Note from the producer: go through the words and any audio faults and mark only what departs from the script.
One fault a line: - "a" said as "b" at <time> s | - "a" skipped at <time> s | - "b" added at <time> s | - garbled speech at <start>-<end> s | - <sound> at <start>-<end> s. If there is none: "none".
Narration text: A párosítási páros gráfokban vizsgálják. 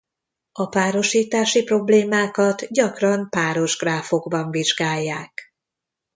- "problémákat gyakran" added at 1.6 s